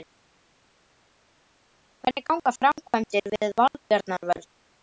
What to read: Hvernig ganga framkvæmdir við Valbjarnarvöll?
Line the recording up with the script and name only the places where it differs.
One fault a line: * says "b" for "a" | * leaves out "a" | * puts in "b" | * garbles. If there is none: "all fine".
all fine